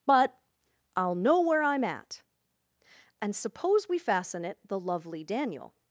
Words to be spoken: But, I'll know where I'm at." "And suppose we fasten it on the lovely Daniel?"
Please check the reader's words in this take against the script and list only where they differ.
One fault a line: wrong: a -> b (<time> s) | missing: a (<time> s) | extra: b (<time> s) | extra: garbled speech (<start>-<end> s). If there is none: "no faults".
missing: on (4.6 s)